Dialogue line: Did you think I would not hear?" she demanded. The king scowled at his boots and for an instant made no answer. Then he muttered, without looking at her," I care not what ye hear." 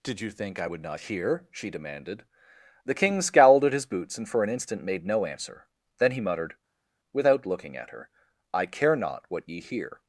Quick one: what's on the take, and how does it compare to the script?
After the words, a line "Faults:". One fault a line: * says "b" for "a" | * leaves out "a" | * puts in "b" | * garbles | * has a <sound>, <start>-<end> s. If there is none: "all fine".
Did you think I would not hear?" she demanded. The king scowled at his boots and for an instant made no answer. Then he muttered, without looking at her," I care not what ye hear."
Faults:
all fine